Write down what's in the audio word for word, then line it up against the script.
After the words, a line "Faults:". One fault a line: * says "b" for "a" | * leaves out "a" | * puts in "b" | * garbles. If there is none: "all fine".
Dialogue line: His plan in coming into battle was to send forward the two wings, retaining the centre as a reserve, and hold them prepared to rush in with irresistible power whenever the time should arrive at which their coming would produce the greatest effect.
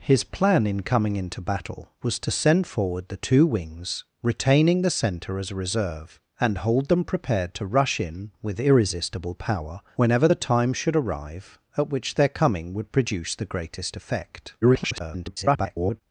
His plan in coming into battle was to send forward the two wings, retaining the centre as a reserve, and hold them prepared to rush in with irresistible power whenever the time should arrive at which their coming would produce the greatest effect. [garbled]
Faults:
* garbles